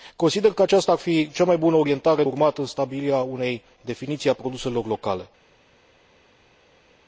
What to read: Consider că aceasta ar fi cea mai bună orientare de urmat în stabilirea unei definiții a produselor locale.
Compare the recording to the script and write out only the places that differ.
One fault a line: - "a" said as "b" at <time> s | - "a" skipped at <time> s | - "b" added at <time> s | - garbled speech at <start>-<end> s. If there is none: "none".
- "de" skipped at 2.2 s